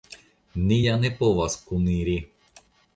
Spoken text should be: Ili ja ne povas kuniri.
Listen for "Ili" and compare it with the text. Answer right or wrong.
wrong